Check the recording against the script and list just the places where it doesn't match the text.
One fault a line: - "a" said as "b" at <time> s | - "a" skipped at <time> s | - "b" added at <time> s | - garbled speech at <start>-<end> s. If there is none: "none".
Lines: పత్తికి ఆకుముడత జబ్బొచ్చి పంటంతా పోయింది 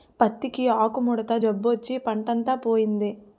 none